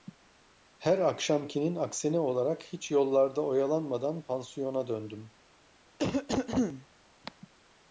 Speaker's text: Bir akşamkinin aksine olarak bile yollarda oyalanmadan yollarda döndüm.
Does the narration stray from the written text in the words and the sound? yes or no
yes